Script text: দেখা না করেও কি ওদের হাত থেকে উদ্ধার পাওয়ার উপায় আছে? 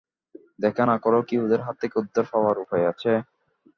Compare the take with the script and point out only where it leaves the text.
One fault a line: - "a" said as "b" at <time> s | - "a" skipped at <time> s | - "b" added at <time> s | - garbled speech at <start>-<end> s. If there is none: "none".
none